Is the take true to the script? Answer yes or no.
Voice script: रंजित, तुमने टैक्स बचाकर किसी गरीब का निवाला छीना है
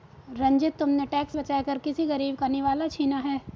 yes